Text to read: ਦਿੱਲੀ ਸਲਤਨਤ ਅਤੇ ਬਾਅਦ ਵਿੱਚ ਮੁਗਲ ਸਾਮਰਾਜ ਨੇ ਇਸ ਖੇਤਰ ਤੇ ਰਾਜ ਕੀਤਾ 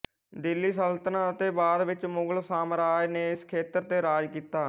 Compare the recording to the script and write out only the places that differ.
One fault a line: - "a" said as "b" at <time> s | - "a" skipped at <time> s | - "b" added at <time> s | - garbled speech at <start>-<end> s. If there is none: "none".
none